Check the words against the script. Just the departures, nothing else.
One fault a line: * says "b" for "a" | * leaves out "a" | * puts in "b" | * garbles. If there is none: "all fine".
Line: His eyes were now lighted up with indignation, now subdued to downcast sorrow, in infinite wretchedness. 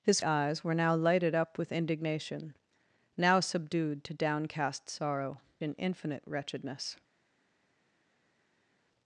all fine